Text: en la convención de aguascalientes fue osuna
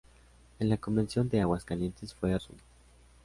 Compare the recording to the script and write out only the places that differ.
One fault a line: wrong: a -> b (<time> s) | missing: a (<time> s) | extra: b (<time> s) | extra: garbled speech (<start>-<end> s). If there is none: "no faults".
no faults